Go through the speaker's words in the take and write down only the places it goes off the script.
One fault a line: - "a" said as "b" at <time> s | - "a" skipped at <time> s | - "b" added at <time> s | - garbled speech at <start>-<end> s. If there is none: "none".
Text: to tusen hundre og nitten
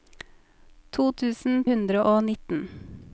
none